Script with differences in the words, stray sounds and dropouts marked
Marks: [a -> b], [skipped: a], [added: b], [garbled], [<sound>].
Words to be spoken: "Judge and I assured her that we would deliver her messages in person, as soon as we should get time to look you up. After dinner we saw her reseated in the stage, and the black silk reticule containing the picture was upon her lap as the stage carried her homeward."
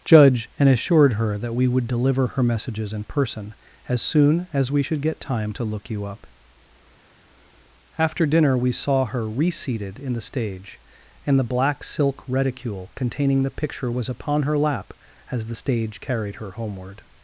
"Judge and [skipped: I] assured her that we would deliver her messages in person, as soon as we should get time to look you up. After dinner we saw her reseated in the stage, and the black silk reticule containing the picture was upon her lap as the stage carried her homeward."